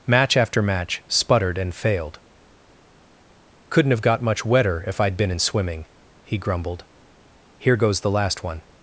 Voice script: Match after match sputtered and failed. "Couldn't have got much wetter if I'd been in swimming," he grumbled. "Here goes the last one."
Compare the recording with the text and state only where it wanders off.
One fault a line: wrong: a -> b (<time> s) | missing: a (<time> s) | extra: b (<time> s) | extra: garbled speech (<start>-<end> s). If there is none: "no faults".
no faults